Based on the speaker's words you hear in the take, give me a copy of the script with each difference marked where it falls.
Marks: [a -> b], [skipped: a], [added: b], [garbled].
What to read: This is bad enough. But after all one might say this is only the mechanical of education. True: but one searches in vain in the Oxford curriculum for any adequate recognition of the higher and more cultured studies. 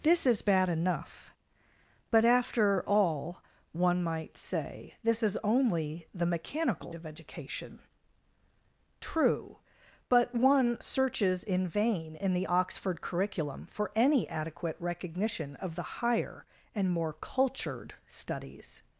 This is bad enough. But after all one might say this is only the mechanical of education. True: but one searches in vain in the Oxford curriculum for any adequate recognition of the higher and more cultured studies.